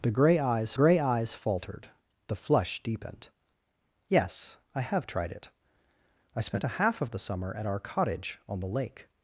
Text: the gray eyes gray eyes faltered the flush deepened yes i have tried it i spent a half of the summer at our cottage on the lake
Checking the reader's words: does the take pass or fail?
pass